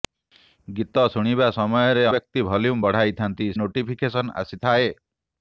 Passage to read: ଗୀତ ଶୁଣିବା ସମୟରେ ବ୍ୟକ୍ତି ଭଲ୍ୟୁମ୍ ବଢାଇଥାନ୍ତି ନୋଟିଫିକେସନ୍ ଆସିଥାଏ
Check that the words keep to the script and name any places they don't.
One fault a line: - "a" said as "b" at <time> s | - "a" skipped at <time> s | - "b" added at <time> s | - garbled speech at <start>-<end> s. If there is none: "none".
none